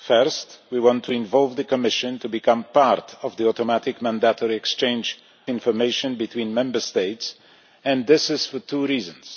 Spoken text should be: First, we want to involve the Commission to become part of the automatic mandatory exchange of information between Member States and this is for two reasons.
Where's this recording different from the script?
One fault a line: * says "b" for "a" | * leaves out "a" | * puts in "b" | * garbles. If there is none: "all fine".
* leaves out "of"